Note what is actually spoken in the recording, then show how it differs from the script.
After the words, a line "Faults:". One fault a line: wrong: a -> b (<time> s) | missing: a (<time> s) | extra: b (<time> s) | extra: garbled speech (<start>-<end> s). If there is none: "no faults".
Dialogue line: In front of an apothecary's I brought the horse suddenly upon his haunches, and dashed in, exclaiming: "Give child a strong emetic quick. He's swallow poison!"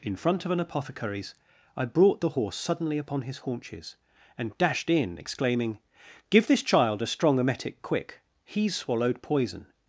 In front of an apothecary's I brought the horse suddenly upon his haunches, and dashed in, exclaiming: "Give this child a strong emetic quick. He's swallowed poison!"
Faults:
extra: this (6.4 s)
wrong: swallow -> swallowed (8.7 s)